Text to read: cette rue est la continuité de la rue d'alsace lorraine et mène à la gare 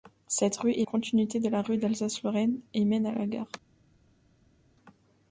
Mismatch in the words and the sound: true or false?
true